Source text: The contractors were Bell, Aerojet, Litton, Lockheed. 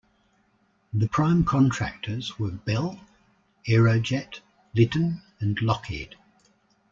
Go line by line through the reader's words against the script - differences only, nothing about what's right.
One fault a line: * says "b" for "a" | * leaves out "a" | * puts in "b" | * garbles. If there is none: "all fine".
* puts in "prime"
* puts in "and"